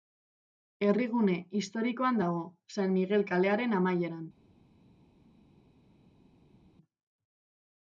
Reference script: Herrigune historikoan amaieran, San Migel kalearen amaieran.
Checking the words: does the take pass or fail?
fail